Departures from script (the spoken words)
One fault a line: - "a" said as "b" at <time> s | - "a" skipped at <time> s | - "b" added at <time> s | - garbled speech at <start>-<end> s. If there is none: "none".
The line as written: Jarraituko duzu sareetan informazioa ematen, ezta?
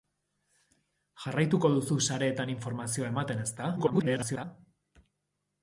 - garbled speech at 3.8-4.4 s